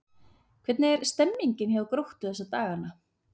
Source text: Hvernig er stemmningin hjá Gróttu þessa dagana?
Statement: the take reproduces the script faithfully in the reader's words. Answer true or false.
true